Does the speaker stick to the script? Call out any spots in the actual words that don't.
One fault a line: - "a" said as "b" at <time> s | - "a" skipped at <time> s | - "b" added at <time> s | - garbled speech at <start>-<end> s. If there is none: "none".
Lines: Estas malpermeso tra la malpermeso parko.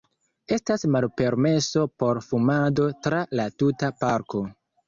- "por fumado" added at 2.0 s
- "malpermeso" said as "tuta" at 3.6 s